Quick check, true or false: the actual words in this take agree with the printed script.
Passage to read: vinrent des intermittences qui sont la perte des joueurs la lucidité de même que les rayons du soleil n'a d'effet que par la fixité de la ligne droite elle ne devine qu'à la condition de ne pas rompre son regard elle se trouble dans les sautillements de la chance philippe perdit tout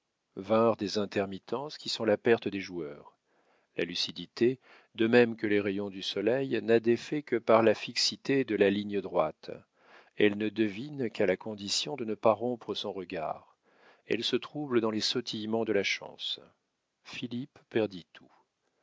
true